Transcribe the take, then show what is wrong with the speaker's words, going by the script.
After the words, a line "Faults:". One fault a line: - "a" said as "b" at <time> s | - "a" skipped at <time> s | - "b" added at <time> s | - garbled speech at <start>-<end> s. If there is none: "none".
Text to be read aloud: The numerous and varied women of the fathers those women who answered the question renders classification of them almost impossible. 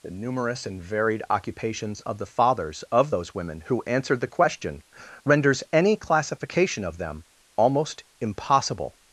The numerous and varied occupations of the fathers of those women who answered the question renders any classification of them almost impossible.
Faults:
- "women" said as "occupations" at 1.3 s
- "of" added at 2.9 s
- "any" added at 5.7 s